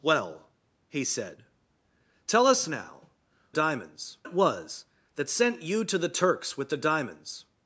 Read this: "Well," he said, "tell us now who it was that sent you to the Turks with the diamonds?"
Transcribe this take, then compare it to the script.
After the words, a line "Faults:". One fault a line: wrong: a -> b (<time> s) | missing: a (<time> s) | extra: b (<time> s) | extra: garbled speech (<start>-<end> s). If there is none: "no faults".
"Well," he said, "tell us now diamonds it was that sent you to the Turks with the diamonds?"
Faults:
wrong: who -> diamonds (3.5 s)